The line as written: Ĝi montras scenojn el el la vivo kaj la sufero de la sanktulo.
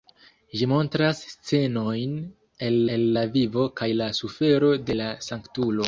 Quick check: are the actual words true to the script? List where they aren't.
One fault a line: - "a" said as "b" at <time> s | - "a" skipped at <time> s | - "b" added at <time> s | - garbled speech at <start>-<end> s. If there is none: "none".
none